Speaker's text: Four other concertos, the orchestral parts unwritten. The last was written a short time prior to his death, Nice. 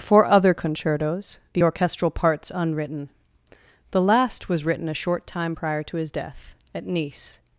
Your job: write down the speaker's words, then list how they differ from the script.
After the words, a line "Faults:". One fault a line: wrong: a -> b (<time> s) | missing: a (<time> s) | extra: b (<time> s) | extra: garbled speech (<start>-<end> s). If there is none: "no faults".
Four other concertos, the orchestral parts unwritten. The last was written a short time prior to his death, at Nice.
Faults:
extra: at (6.7 s)